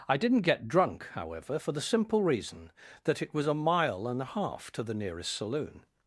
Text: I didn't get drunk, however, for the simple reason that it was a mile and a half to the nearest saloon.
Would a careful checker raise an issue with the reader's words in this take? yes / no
no